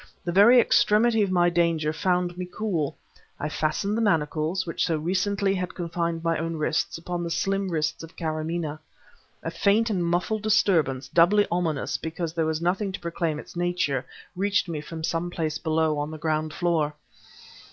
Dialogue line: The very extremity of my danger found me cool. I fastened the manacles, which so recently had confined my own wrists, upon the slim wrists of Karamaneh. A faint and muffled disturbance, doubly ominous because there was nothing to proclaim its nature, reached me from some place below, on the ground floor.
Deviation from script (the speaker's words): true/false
false